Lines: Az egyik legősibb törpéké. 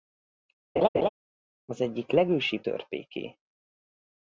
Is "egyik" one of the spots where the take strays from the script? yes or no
no